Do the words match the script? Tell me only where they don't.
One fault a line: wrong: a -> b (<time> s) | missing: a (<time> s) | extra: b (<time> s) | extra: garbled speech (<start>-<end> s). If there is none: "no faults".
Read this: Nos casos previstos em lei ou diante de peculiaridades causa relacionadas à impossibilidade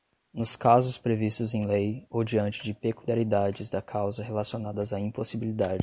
extra: da (3.7 s)